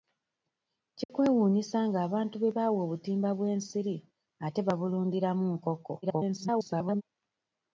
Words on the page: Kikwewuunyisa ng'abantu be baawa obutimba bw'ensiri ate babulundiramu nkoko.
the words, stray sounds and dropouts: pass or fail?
fail